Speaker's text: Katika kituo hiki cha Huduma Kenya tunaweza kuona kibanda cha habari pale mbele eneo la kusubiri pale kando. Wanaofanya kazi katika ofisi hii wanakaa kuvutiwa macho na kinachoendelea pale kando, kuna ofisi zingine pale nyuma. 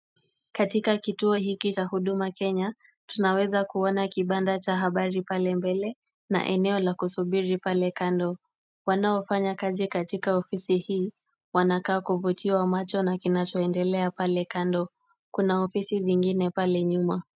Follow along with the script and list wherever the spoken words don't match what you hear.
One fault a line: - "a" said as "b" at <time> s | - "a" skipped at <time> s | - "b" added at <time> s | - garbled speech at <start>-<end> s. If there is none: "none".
- "na" added at 6.3 s